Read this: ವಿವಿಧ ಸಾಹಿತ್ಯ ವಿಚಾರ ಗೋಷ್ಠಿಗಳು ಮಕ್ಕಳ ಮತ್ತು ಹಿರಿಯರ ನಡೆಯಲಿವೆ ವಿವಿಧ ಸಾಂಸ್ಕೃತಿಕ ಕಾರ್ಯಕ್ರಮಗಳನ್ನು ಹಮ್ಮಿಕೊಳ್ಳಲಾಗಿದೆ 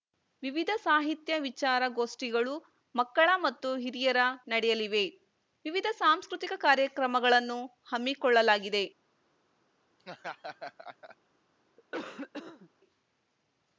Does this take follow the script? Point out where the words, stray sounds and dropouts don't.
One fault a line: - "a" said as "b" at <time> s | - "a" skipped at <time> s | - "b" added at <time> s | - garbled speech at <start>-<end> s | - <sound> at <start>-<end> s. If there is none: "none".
- laugh at 10.0-11.2 s
- cough at 11.8-12.7 s